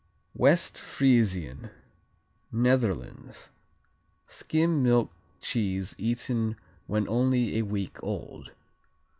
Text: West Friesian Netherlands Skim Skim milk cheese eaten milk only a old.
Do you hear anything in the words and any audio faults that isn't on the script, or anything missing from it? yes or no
yes